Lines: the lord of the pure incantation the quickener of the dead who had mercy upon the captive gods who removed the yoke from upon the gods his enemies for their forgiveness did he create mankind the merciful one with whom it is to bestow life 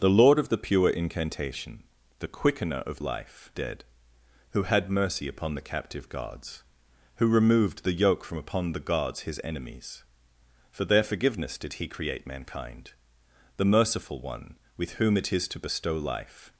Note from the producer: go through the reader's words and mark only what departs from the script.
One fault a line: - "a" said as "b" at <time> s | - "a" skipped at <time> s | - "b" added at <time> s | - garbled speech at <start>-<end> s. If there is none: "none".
- "the" said as "life" at 3.0 s